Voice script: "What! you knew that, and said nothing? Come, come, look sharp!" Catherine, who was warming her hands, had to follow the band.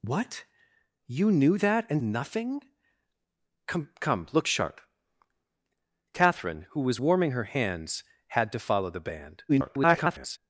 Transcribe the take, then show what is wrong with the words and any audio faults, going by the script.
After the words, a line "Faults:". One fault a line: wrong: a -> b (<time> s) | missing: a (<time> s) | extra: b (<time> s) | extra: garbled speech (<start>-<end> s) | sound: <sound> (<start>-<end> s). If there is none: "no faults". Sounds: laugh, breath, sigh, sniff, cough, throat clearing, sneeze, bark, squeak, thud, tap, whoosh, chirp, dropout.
"What! you knew that, and nothing? Come, come, look sharp!" Catherine, who was warming her hands, had to follow the band. [garbled]
Faults:
missing: said (2.0 s)
extra: garbled speech (9.5-10.4 s)